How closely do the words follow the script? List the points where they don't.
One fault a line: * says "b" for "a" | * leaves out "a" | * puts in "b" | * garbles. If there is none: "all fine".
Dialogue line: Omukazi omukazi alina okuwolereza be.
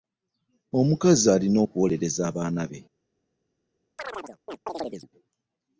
* leaves out "omukazi"
* puts in "abaana"